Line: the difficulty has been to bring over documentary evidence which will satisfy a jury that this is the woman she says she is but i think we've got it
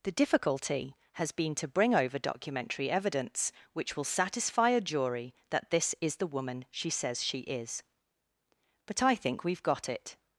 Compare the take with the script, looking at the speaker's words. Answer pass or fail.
pass